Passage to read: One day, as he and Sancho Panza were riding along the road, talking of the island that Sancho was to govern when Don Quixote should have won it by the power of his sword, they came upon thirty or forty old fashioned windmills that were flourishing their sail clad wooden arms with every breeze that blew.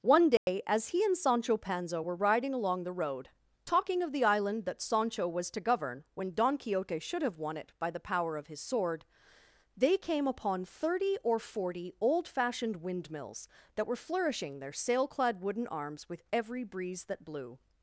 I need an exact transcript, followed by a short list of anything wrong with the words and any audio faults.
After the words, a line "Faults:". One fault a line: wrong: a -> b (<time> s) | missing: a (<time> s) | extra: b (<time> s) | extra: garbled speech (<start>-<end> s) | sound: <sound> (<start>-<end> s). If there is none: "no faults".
One day, as he and Sancho Panza were riding along the road, talking of the island that Sancho was to govern when Don Quixote should have won it by the power of his sword, they came upon thirty or forty old fashioned windmills that were flourishing their sail clad wooden arms with every breeze that blew.
Faults:
sound: dropout (0.4-0.5 s)